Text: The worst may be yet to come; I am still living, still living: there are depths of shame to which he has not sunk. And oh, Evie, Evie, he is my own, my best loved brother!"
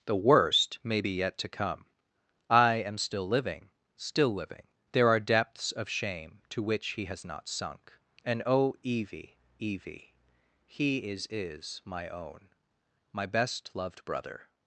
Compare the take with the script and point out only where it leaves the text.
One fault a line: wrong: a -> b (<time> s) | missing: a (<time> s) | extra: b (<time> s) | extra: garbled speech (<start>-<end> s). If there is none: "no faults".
extra: is (11.3 s)